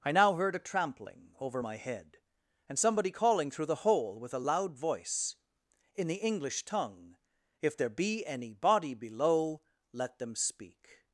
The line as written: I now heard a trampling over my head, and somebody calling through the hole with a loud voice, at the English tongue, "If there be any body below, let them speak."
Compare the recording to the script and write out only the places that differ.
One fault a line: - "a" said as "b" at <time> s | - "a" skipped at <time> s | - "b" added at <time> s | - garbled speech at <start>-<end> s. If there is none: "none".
- "at" said as "in" at 5.9 s